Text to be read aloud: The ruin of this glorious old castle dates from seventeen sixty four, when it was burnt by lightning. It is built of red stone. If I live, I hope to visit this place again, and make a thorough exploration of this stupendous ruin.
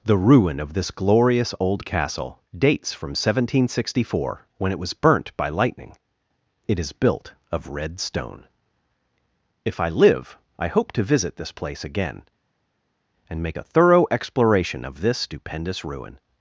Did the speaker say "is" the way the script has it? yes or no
yes